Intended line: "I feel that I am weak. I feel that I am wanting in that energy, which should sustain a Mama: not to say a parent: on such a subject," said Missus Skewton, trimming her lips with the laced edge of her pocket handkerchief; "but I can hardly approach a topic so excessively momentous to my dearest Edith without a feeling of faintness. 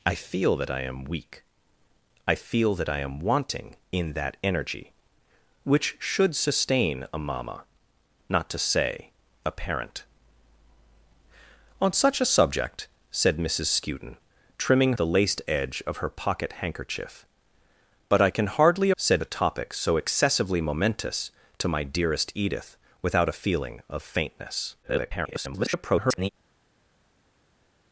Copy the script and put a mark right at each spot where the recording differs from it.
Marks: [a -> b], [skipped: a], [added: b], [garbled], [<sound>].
"I feel that I am weak. I feel that I am wanting in that energy, which should sustain a Mama: not to say a parent: on such a subject," said Missus Skewton, trimming [skipped: her lips with] the laced edge of her pocket handkerchief; "but I can hardly [approach -> said] a topic so excessively momentous to my dearest Edith without a feeling of faintness. [garbled]